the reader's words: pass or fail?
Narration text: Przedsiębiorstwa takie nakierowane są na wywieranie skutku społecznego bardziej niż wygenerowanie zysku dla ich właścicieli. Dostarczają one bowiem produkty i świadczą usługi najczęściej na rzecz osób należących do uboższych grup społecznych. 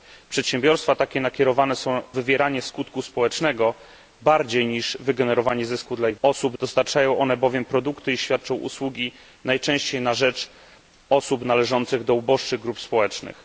fail